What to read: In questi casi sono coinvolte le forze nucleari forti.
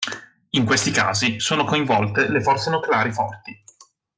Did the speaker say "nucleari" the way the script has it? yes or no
yes